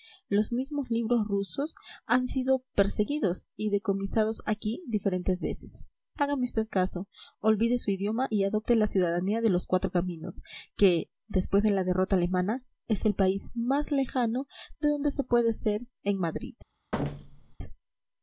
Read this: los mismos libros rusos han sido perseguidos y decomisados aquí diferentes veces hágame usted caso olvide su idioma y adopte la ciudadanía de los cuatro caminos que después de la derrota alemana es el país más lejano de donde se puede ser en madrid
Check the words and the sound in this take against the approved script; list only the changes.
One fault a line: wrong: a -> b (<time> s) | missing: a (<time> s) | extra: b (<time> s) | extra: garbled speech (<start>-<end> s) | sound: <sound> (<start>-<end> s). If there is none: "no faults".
sound: thud (16.9-17.6 s)